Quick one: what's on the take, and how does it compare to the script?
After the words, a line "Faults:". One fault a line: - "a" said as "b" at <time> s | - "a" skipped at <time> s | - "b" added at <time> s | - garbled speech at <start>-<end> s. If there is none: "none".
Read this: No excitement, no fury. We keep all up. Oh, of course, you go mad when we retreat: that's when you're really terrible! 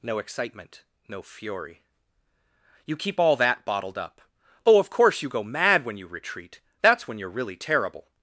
No excitement, no fury. You keep all that bottled up. Oh, of course, you go mad when you retreat: that's when you're really terrible!
Faults:
- "We" said as "You" at 2.9 s
- "that bottled" added at 3.4 s
- "we" said as "you" at 6.0 s